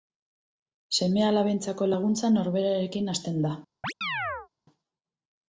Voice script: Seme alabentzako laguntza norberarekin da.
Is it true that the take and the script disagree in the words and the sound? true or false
true